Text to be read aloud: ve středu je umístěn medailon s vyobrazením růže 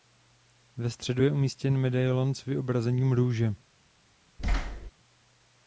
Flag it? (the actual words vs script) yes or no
no